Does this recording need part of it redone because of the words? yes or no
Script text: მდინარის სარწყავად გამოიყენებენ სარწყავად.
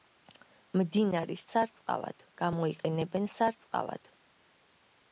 no